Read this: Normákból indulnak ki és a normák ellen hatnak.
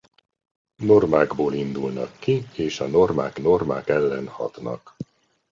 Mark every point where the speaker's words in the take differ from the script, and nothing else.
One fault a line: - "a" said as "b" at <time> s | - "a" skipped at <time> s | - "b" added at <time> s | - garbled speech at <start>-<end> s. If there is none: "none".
- "normák" added at 3.4 s